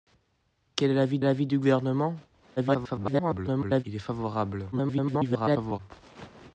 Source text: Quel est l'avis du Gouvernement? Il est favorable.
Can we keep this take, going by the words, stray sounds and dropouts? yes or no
no